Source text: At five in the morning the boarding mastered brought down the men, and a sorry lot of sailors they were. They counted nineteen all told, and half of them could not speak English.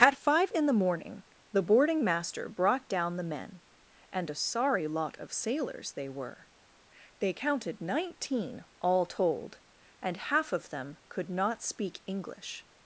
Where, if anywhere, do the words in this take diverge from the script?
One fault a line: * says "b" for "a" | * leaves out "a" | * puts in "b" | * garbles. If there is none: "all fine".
* says "master" for "mastered"